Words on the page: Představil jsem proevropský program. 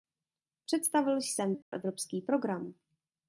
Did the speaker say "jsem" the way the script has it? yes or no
yes